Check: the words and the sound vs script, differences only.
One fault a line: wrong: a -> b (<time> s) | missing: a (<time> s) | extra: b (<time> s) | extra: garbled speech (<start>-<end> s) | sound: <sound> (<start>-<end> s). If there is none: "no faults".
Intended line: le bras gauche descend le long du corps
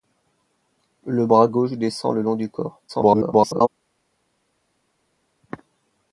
extra: garbled speech (2.9-3.7 s)